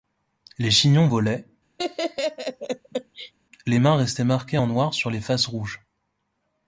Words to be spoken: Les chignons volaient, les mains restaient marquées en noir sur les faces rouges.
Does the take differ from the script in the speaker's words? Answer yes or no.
no